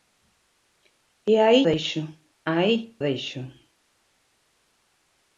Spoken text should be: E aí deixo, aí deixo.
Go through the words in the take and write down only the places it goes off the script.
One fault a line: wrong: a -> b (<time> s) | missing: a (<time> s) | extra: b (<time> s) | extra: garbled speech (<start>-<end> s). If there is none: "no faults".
no faults